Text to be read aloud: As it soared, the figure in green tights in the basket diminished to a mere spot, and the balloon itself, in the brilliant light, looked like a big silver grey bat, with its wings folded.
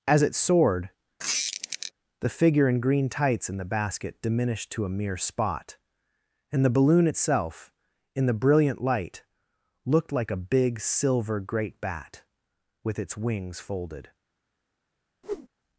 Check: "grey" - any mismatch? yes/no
yes